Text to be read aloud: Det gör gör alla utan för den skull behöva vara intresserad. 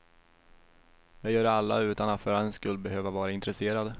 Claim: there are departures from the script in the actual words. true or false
true